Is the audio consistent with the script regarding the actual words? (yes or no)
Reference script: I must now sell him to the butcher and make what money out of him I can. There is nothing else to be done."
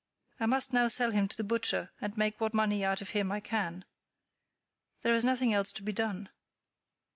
yes